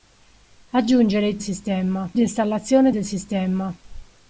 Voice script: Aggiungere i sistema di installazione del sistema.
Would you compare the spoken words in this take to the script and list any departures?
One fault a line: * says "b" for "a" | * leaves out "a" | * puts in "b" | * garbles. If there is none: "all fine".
all fine